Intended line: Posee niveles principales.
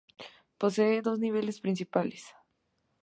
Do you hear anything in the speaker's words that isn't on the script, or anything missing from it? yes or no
yes